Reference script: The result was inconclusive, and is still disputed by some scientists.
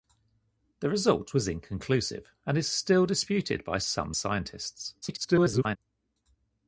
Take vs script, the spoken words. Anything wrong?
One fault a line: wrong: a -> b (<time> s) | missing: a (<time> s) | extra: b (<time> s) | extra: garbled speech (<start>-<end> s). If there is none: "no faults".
extra: garbled speech (5.0-5.8 s)